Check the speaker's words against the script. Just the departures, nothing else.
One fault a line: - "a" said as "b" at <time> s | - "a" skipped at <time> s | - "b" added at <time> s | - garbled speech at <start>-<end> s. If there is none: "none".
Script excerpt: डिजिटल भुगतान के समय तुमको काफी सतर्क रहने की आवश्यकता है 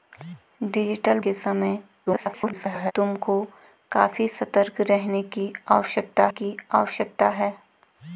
- "भुगतान" skipped at 1.2 s
- garbled speech at 2.1-2.9 s
- "की आवश्यकता" added at 6.3 s